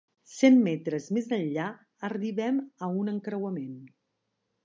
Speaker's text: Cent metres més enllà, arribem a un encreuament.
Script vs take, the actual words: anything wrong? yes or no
no